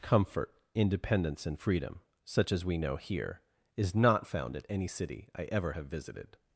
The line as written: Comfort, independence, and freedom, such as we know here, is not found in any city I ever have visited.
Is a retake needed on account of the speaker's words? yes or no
yes